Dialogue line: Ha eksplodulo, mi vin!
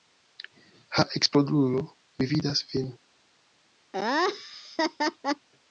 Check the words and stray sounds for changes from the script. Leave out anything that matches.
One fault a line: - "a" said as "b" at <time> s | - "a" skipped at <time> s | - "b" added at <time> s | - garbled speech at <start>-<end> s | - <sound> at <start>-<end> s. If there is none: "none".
- "vidas" added at 2.4 s
- laugh at 3.9-5.5 s